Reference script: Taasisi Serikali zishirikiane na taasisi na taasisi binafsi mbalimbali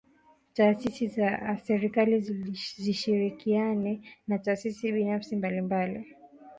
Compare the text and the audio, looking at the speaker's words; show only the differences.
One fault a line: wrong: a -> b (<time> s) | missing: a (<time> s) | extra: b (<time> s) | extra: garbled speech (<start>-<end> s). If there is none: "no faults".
extra: za (1.1 s)
missing: na taasisi (4.9 s)